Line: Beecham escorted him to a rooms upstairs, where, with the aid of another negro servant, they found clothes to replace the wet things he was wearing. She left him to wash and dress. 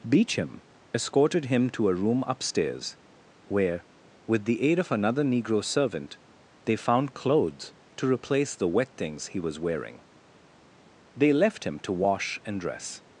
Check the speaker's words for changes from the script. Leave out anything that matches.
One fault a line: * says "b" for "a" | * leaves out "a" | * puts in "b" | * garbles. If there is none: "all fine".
* says "room" for "rooms"
* says "They" for "She"